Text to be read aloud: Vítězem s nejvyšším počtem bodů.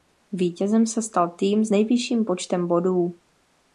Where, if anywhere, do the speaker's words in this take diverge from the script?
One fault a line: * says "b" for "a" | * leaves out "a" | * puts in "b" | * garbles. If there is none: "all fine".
* puts in "se stal tým"